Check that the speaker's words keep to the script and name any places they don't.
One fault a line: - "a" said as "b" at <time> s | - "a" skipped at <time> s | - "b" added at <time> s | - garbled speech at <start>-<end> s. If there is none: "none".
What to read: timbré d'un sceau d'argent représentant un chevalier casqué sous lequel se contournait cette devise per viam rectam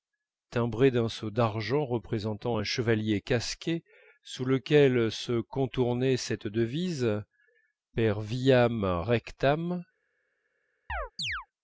none